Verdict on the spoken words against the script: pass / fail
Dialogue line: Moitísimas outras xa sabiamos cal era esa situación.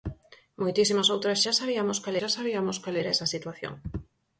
fail